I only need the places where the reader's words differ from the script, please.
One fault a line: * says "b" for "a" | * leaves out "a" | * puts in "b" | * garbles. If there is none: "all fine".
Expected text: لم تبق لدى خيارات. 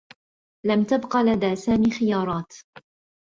* puts in "سامي"